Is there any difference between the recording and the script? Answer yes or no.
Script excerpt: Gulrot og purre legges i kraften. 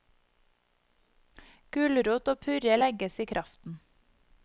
no